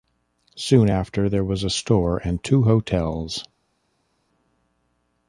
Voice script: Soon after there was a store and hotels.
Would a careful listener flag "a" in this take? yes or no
no